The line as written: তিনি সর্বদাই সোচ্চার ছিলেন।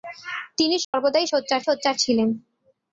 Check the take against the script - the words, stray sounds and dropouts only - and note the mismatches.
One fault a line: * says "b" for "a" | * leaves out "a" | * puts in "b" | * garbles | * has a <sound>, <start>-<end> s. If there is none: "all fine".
* has a dropout, 0.8-0.9 s
* puts in "সোচ্চার"